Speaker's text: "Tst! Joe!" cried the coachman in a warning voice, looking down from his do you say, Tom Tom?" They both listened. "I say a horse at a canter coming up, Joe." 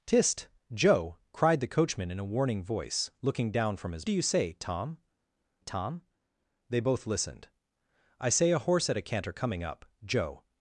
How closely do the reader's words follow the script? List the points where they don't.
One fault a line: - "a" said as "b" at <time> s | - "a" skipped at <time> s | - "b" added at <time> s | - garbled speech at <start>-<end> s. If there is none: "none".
none